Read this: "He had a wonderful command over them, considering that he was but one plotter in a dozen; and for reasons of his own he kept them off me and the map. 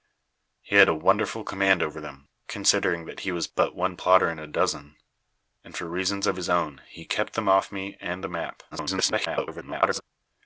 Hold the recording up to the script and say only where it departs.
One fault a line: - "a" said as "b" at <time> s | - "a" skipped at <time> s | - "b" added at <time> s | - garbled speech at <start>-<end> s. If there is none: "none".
- garbled speech at 8.7-10.0 s